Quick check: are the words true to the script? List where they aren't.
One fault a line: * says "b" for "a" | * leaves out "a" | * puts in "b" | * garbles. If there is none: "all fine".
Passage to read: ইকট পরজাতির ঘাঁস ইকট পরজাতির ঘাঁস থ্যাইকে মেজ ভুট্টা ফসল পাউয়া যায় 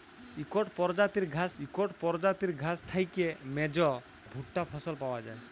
all fine